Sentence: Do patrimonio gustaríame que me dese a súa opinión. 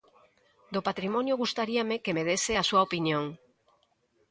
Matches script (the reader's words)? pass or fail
pass